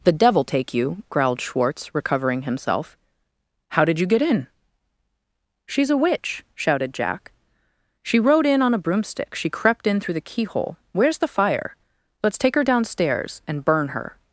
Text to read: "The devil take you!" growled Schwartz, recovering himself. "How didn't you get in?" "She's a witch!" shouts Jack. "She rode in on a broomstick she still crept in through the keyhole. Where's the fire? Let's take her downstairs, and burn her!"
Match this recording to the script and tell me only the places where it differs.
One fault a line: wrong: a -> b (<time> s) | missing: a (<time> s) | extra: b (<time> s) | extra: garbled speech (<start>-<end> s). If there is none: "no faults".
wrong: didn't -> did (3.9 s)
wrong: shouts -> shouted (6.5 s)
missing: still (9.5 s)